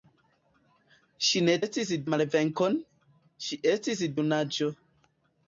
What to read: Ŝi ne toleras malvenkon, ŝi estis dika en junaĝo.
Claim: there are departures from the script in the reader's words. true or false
true